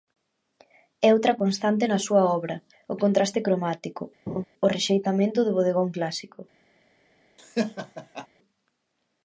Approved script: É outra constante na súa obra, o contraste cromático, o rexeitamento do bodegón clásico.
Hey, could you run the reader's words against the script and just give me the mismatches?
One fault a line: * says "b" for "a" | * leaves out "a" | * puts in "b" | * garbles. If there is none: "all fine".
all fine